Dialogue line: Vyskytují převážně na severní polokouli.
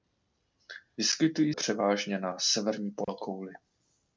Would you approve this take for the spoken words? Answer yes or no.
yes